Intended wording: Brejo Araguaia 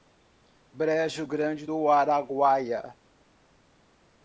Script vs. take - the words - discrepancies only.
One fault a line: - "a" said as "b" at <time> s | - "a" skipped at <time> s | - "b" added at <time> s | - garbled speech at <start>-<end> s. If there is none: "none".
- "Grande do" added at 1.3 s